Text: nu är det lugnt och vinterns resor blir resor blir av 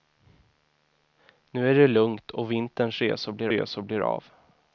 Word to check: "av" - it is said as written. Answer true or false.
true